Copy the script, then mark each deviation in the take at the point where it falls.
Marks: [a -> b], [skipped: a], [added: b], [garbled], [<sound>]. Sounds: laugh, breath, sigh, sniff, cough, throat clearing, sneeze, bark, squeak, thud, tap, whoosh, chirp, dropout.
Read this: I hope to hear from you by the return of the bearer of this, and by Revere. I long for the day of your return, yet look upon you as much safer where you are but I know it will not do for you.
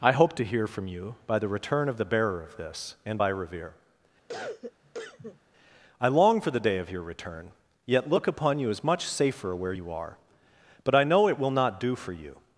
I hope to hear from you by the return of the bearer of this, and by Revere. [cough] I long for the day of your return, yet look upon you as much safer where you are but I know it will not do for you.